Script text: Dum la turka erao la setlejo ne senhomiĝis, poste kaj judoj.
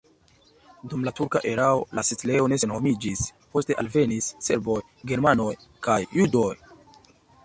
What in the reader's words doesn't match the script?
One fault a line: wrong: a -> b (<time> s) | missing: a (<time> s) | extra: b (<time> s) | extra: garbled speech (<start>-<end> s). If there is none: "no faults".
extra: alvenis serboj germanoj (3.8 s)